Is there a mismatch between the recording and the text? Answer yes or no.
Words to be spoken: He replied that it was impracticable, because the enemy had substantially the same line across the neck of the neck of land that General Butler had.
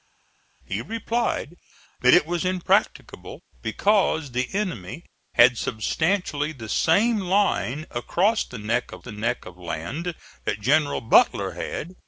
no